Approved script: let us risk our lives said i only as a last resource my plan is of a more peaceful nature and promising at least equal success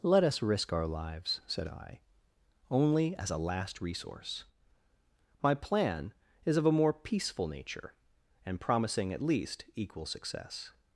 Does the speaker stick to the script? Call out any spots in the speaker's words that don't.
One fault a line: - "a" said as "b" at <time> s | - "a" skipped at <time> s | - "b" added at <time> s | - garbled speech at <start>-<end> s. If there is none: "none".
none